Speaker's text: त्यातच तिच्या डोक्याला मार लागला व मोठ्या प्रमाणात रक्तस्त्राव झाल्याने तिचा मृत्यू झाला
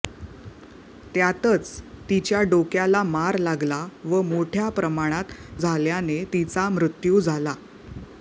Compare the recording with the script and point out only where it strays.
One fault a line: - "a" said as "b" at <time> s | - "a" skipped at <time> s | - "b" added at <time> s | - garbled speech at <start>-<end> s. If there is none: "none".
- "रक्तस्त्राव" skipped at 5.6 s